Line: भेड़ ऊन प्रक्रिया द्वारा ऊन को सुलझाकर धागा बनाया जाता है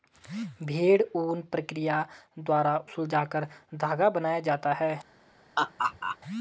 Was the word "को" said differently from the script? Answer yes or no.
yes